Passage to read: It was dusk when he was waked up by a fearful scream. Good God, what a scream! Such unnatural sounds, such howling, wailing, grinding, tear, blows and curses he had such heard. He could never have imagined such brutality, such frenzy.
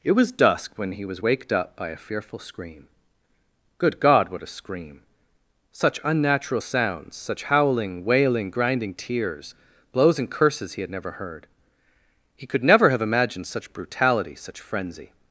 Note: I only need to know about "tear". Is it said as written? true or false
false